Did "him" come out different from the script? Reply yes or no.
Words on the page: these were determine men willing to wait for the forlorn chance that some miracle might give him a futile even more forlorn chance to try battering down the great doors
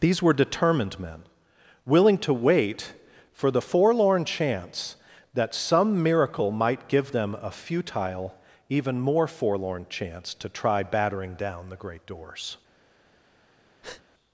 yes